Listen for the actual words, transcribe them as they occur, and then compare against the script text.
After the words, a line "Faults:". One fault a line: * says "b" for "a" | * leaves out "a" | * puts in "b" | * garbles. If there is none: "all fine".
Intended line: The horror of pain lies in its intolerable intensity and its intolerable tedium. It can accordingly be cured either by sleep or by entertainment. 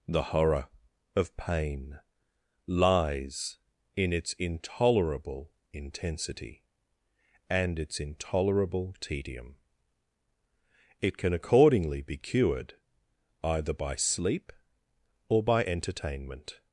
The horror of pain lies in its intolerable intensity and its intolerable tedium. It can accordingly be cured either by sleep or by entertainment.
Faults:
all fine